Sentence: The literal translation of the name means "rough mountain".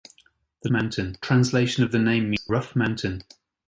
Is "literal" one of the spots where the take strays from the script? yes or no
yes